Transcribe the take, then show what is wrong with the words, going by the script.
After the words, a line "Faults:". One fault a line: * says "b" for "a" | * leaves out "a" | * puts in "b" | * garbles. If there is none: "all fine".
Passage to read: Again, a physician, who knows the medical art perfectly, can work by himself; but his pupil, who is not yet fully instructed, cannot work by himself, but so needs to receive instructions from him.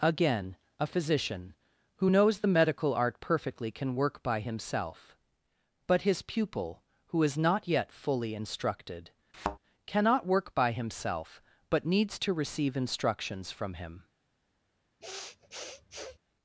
Again, a physician, who knows the medical art perfectly, can work by himself; but his pupil, who is not yet fully instructed, cannot work by himself, but needs to receive instructions from him.
Faults:
* leaves out "so"